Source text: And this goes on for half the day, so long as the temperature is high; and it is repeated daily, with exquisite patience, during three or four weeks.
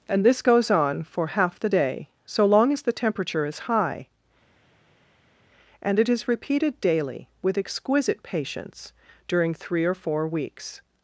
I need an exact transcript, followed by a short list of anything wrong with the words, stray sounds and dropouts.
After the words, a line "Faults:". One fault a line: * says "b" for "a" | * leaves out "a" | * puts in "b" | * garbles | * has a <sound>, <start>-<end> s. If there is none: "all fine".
And this goes on for half the day, so long as the temperature is high; and it is repeated daily, with exquisite patience, during three or four weeks.
Faults:
all fine